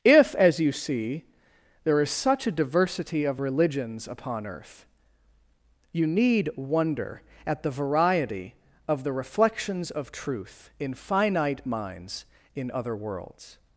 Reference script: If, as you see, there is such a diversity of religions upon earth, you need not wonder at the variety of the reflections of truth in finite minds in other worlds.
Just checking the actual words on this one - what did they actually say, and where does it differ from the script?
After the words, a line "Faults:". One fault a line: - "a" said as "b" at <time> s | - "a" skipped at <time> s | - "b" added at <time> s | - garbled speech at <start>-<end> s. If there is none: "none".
If, as you see, there is such a diversity of religions upon earth, you need wonder at the variety of the reflections of truth in finite minds in other worlds.
Faults:
- "not" skipped at 6.5 s